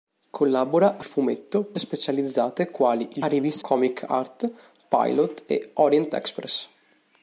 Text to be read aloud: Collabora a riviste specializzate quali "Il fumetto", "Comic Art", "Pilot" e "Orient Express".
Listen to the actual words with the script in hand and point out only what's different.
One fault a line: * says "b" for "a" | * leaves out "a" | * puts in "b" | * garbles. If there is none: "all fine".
* says "fumetto" for "riviste"
* says "riviste" for "fumetto"